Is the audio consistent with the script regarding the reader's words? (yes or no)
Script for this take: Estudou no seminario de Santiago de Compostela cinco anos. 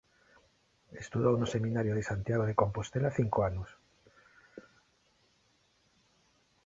yes